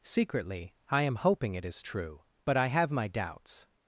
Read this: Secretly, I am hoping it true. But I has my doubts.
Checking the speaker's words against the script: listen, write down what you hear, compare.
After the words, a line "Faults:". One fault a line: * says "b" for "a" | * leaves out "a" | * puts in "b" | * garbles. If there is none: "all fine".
Secretly, I am hoping it is true. But I have my doubts.
Faults:
* puts in "is"
* says "have" for "has"